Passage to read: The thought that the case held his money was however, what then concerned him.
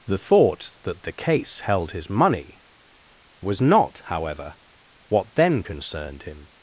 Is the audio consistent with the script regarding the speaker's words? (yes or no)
no